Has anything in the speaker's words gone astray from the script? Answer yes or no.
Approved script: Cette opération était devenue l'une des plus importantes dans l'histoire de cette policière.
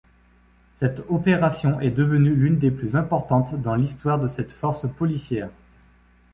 yes